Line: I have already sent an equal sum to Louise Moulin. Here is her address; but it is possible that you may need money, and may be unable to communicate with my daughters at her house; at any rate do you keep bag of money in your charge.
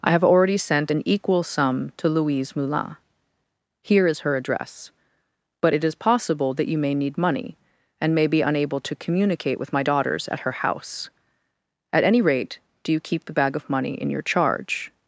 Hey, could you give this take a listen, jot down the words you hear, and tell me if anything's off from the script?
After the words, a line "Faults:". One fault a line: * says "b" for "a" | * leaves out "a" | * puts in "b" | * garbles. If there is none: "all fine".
I have already sent an equal sum to Louise Moulin. Here is her address; but it is possible that you may need money, and may be unable to communicate with my daughters at her house; at any rate do you keep the bag of money in your charge.
Faults:
* puts in "the"